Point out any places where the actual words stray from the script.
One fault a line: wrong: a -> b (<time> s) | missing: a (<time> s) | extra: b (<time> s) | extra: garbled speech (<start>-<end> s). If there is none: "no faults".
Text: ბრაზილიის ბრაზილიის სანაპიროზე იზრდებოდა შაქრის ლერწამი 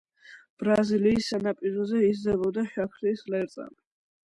missing: ბრაზილიის (1.3 s)